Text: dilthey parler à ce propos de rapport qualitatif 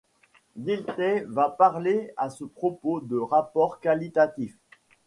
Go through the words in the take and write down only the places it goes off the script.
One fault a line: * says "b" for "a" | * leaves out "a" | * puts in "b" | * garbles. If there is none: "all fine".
* puts in "va"